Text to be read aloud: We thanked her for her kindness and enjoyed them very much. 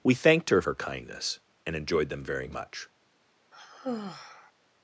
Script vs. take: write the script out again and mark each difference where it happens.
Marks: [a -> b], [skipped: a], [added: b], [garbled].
We thanked her [skipped: for] her kindness and enjoyed them very much.